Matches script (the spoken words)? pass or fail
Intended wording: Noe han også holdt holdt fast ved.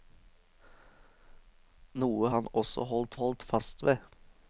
pass